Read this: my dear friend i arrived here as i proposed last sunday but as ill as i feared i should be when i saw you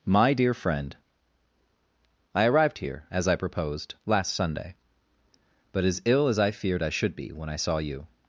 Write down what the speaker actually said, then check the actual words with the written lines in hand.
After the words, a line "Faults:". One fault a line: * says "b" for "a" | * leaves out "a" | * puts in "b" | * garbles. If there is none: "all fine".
my dear friend i arrived here as i proposed last sunday but as ill as i feared i should be when i saw you
Faults:
all fine